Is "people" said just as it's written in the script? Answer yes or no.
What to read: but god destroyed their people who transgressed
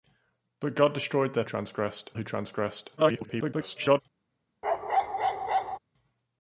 no